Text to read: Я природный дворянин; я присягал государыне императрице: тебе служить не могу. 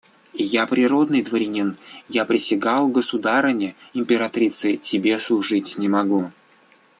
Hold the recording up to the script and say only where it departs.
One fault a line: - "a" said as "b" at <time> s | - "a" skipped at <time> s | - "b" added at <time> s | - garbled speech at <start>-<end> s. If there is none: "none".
none